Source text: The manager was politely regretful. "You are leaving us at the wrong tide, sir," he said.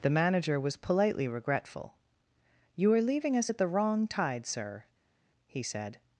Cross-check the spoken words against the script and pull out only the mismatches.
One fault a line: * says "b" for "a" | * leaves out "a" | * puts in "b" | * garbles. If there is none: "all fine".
all fine